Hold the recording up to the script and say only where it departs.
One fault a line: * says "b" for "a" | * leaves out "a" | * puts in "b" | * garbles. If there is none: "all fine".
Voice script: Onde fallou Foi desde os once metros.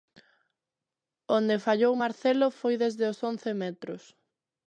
* puts in "Marcelo"